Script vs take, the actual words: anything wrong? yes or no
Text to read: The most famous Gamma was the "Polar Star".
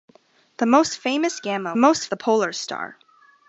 yes